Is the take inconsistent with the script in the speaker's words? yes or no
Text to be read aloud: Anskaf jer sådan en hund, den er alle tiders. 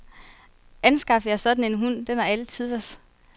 no